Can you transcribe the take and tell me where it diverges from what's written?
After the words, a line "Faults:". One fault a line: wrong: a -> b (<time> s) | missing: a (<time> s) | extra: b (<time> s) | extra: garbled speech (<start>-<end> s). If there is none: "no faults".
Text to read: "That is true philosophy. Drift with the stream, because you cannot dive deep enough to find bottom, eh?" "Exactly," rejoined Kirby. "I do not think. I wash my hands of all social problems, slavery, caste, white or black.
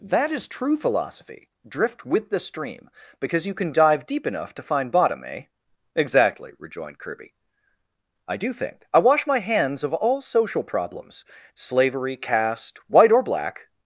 "That is true philosophy. Drift with the stream, because you can dive deep enough to find bottom, eh?" "Exactly," rejoined Kirby. "I do think. I wash my hands of all social problems, slavery, caste, white or black.
Faults:
wrong: cannot -> can (3.5 s)
missing: not (8.5 s)